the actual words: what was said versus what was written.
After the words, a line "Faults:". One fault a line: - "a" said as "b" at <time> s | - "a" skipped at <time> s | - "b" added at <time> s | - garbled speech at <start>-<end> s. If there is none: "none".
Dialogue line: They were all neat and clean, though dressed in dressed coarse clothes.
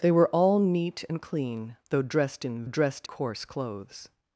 They were all neat and clean, though dressed in dressed coarse clothes.
Faults:
none